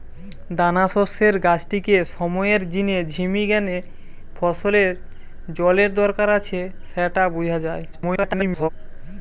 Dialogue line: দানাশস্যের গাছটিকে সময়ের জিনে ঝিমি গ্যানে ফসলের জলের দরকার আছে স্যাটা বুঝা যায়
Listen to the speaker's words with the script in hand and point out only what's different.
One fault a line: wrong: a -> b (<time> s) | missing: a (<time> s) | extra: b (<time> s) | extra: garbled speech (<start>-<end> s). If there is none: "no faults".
extra: garbled speech (7.9-8.7 s)